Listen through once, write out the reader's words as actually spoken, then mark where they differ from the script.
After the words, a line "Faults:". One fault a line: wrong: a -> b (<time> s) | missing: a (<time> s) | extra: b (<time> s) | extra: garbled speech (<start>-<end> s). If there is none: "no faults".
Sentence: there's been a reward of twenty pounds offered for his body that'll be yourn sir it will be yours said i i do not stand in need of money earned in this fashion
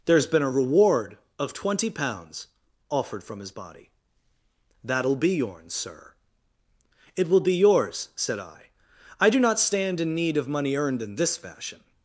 there's been a reward of twenty pounds offered from his body that'll be yourn sir it will be yours said i i do not stand in need of money earned in this fashion
Faults:
wrong: for -> from (3.2 s)